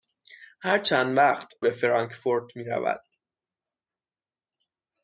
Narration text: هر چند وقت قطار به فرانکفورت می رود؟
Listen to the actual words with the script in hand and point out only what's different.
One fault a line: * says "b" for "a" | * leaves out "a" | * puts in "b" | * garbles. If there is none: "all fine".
* leaves out "قطار"